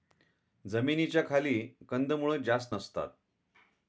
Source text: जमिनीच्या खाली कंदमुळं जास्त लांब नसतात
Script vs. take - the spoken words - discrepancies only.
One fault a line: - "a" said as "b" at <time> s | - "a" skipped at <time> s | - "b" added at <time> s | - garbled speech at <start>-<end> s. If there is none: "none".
- "लांब" skipped at 2.8 s